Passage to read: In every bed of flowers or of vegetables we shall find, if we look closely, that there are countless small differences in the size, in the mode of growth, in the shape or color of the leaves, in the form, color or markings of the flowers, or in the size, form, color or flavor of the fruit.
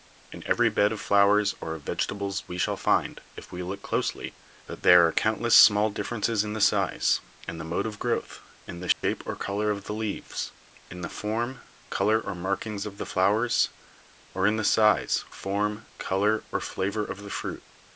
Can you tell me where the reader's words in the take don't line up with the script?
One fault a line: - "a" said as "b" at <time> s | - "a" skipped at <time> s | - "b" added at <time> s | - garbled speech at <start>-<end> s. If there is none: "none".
none